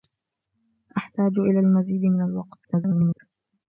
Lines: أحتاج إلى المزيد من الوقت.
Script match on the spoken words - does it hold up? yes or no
no